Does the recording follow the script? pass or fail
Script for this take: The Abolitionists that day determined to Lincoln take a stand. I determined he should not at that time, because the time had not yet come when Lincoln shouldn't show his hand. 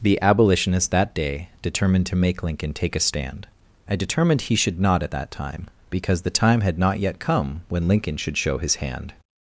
fail